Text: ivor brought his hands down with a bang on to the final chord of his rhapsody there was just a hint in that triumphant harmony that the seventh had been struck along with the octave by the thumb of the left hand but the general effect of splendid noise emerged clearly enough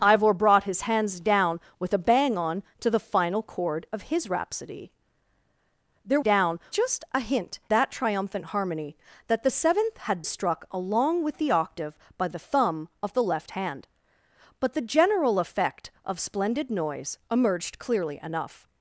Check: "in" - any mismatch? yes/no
yes